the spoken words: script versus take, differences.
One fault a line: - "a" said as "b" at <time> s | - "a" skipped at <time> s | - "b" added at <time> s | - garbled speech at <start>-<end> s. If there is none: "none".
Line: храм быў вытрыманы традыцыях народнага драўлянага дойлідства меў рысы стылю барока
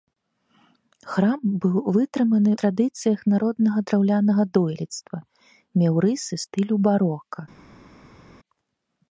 none